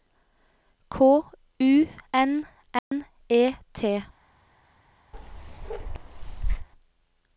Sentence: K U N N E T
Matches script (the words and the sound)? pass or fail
fail